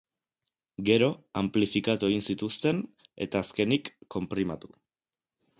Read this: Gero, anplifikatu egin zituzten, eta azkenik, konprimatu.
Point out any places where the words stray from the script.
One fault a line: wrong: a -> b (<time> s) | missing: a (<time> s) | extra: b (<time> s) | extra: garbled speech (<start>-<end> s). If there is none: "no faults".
no faults